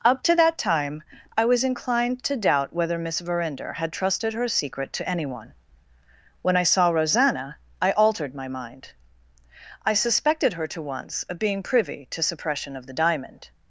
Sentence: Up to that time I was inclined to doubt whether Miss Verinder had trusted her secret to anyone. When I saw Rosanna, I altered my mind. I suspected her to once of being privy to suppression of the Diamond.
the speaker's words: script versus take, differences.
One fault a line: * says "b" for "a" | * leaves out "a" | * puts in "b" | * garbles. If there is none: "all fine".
all fine